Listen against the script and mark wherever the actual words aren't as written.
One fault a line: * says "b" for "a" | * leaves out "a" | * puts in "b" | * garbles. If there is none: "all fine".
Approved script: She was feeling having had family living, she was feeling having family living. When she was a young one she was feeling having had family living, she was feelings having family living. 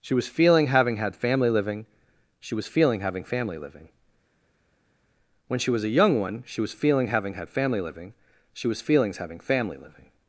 all fine